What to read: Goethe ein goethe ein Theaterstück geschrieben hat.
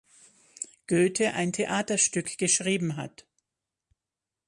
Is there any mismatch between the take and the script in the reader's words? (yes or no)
yes